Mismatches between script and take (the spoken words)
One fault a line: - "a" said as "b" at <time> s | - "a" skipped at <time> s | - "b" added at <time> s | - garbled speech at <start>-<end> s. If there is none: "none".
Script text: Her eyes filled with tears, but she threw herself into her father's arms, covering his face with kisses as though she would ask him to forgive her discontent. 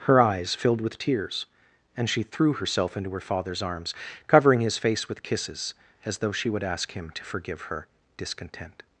- "but" said as "and" at 1.9 s